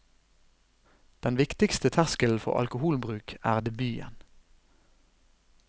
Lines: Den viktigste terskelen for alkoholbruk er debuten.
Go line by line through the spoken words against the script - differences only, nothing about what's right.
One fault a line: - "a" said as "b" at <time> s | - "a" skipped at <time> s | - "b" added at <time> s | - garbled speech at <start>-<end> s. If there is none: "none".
none